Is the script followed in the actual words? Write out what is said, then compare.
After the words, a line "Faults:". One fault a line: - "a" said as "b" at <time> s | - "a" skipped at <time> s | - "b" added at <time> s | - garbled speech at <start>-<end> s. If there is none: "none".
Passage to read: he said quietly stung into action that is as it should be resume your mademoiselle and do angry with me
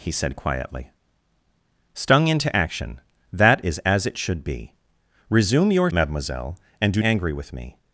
he said quietly stung into action that is as it should be resume your mademoiselle and do angry with me
Faults:
none